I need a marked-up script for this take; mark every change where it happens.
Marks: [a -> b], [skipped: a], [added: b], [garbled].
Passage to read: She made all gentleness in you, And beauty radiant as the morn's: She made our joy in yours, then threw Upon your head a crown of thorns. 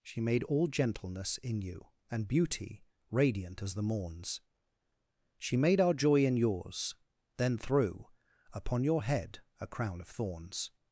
She made all gentleness in you, And beauty radiant as the morn's: She made our joy in yours, then threw Upon your head a crown of thorns.